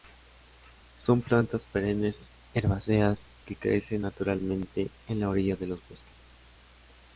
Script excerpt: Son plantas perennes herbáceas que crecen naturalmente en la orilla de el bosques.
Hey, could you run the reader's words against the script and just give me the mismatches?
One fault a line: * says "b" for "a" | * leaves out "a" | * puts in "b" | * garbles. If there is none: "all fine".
* says "los" for "el"